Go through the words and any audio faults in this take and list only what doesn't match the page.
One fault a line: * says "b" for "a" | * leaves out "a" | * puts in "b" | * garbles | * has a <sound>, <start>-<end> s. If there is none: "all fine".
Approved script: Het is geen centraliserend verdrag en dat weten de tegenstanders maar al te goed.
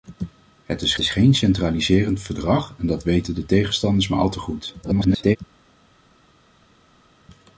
* puts in "is"
* garbles